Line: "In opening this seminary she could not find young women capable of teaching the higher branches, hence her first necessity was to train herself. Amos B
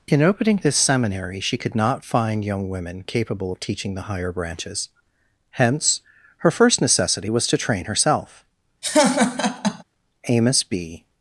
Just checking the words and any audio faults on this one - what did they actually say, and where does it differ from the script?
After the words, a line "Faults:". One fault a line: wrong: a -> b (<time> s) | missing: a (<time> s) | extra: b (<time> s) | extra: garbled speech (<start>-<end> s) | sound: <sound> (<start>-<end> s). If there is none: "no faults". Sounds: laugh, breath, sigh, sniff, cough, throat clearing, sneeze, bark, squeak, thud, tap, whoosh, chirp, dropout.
"In opening this seminary she could not find young women capable of teaching the higher branches, hence her first necessity was to train herself. Amos B
Faults:
sound: laugh (8.8-9.8 s)